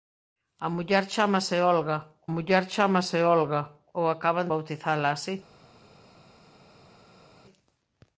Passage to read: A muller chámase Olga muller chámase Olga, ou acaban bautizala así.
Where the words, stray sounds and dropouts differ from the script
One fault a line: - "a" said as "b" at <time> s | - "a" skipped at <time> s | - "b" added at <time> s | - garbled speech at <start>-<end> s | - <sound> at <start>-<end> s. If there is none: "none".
none